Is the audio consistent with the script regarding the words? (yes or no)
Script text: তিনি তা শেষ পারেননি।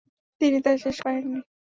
yes